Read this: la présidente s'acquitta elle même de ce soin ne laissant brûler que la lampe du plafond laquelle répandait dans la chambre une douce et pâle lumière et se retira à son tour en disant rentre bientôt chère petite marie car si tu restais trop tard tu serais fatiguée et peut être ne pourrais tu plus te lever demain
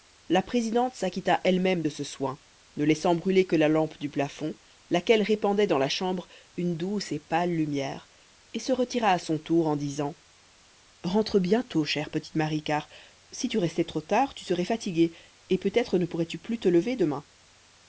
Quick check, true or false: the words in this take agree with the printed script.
true